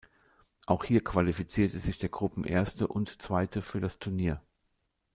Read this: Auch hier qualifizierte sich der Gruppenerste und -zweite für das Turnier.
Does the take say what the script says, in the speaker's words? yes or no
yes